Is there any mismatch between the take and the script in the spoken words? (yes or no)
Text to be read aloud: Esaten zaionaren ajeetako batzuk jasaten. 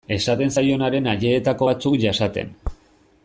no